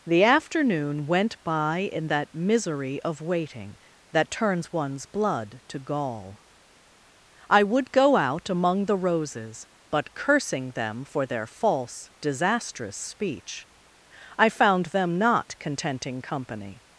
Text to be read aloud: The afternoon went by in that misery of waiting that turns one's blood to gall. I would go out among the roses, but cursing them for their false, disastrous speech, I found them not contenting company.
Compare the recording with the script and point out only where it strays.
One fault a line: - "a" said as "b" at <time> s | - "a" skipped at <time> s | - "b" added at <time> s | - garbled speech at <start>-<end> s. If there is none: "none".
none